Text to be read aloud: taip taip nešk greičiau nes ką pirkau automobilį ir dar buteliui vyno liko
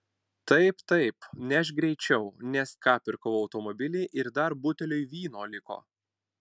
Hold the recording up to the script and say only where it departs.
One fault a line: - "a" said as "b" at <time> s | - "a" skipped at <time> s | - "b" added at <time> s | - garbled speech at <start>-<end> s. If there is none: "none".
none